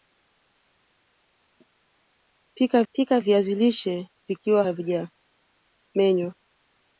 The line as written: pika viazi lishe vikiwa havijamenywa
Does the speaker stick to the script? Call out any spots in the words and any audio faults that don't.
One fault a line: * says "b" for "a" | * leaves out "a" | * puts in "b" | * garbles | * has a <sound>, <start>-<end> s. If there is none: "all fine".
* puts in "pika"